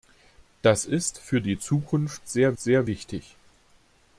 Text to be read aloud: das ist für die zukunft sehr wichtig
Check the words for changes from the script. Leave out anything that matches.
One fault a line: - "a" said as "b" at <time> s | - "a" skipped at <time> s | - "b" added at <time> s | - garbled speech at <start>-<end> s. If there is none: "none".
- "sehr" added at 2.6 s